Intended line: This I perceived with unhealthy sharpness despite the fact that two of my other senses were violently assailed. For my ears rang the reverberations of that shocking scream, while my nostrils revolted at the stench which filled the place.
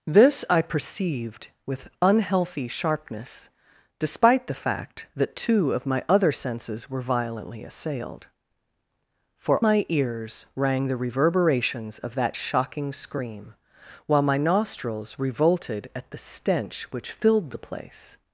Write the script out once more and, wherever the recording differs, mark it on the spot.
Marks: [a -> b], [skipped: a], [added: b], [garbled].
This I perceived with unhealthy sharpness despite the fact that two of my other senses were violently assailed. For my ears rang the reverberations of that shocking scream, while my nostrils revolted at the stench which filled the place.